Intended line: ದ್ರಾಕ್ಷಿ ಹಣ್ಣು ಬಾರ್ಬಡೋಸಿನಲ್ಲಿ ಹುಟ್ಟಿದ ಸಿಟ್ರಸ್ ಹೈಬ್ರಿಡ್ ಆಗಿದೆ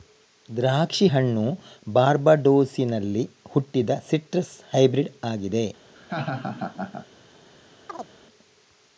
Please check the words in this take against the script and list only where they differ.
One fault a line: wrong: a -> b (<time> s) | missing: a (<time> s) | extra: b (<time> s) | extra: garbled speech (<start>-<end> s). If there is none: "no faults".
no faults